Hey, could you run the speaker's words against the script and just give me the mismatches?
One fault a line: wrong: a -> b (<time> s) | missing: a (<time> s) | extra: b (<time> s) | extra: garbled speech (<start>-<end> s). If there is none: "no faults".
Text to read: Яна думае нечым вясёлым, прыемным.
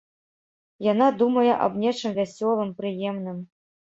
extra: аб (1.7 s)